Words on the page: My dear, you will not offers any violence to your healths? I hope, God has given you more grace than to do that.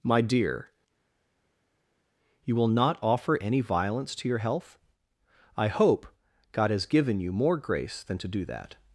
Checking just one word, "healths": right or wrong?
wrong